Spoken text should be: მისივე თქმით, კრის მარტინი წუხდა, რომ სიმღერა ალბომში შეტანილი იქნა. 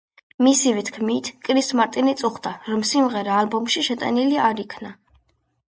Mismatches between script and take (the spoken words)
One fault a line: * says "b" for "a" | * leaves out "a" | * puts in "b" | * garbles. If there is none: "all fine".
* puts in "არ"